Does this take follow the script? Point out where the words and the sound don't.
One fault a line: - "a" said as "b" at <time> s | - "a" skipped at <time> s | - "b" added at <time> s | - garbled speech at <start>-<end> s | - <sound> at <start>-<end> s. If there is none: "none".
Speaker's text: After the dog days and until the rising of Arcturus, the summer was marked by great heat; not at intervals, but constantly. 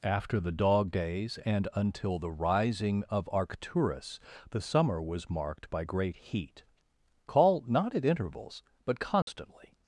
- "call" added at 7.3 s
- dropout at 9.2-9.3 s